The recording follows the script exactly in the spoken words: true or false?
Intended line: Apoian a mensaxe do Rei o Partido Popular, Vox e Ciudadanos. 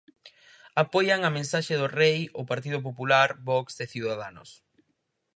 true